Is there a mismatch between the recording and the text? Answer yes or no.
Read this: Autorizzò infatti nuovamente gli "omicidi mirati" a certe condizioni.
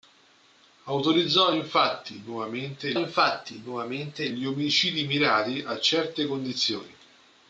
yes